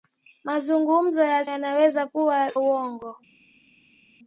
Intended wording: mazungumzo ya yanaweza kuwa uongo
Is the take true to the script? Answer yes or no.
yes